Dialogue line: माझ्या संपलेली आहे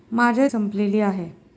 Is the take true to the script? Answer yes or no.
yes